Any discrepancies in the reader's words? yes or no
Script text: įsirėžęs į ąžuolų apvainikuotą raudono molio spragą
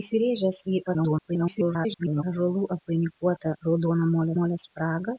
yes